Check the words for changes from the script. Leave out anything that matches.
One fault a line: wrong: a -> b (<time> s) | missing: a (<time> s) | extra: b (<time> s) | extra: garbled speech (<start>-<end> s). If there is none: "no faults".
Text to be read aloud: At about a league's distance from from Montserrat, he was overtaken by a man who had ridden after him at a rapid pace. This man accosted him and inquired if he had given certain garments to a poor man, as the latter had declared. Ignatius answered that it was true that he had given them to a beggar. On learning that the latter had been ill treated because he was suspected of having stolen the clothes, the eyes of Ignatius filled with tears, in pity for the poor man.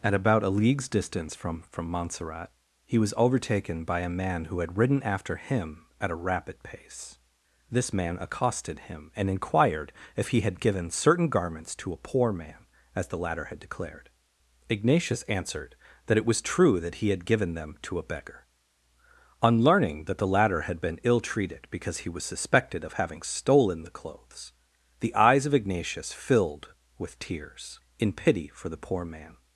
no faults